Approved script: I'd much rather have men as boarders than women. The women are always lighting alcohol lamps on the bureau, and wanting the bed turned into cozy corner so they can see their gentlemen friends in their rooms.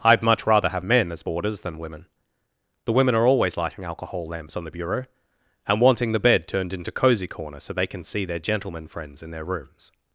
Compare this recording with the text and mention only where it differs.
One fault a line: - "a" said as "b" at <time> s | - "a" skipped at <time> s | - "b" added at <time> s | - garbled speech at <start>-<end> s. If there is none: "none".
none